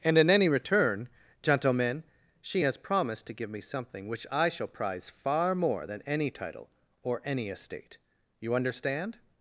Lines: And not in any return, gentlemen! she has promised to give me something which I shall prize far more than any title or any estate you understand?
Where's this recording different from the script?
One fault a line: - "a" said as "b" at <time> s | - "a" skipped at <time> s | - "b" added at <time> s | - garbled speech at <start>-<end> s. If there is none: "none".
- "not" skipped at 0.2 s